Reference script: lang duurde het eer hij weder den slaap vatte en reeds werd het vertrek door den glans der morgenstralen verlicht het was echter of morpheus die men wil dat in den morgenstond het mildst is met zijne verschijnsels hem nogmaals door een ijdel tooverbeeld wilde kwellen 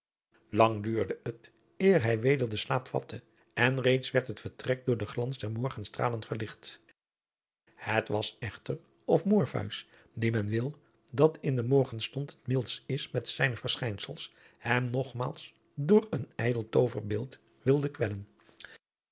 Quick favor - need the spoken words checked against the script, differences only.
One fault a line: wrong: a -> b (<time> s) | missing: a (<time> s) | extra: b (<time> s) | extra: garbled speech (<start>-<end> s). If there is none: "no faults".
no faults